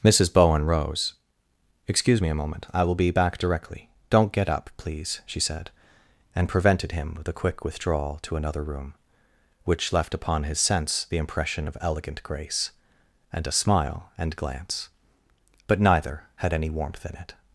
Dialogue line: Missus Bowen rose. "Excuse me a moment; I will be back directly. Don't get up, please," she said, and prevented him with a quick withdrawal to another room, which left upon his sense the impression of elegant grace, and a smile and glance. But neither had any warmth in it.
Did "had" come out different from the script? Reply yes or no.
no